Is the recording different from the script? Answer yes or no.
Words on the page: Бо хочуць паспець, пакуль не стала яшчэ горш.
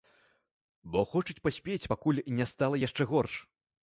no